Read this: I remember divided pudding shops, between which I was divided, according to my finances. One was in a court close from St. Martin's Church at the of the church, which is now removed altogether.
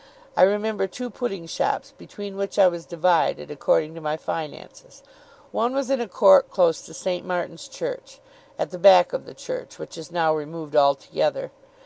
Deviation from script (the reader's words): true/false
true